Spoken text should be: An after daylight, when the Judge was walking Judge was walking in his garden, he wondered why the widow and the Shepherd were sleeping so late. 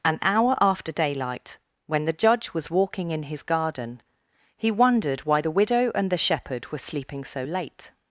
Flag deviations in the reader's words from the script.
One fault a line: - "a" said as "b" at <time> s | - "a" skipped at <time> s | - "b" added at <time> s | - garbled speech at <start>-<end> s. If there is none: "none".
- "hour" added at 0.2 s
- "Judge was walking" skipped at 3.1 s